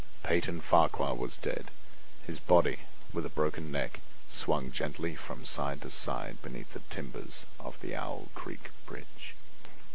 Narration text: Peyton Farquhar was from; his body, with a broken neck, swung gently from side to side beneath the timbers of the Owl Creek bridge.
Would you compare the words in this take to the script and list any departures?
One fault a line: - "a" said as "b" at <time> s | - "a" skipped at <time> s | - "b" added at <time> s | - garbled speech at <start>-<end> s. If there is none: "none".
- "from" said as "dead" at 1.4 s